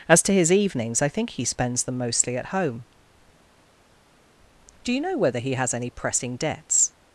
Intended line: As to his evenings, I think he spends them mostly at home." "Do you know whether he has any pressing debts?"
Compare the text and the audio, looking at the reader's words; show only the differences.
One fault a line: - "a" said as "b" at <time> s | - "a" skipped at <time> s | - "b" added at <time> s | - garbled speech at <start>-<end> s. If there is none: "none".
none